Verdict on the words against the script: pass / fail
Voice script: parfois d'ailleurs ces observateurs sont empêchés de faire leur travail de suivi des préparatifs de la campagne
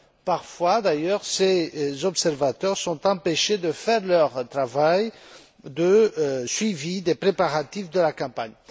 pass